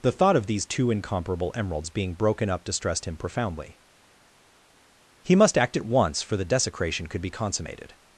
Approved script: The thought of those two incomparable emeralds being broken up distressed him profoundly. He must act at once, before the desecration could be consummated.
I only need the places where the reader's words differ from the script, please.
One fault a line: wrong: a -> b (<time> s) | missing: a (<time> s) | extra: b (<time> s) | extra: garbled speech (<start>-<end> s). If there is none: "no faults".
wrong: those -> these (0.5 s)
wrong: before -> for (6.2 s)